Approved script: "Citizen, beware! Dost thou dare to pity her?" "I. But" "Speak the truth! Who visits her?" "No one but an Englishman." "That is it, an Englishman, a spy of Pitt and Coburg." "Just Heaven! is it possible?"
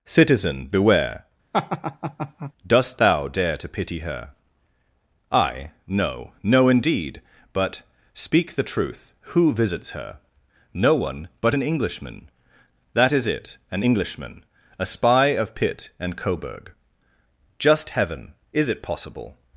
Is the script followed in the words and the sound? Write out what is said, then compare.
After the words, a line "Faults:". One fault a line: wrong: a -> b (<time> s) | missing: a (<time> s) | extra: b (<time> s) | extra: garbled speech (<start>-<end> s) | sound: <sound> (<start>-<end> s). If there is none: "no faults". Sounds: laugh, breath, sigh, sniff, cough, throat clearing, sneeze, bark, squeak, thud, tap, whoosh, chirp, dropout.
"Citizen, beware! Dost thou dare to pity her?" "I? No, no, indeed. But" "Speak the truth! Who visits her?" "No one but an Englishman." "That is it, an Englishman, a spy of Pitt and Coburg." "Just Heaven! is it possible?"
Faults:
sound: laugh (1.5-2.5 s)
extra: No no indeed (5.9 s)